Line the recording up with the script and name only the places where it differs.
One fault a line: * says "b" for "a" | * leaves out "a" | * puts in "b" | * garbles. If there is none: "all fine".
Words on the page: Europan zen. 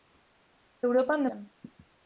all fine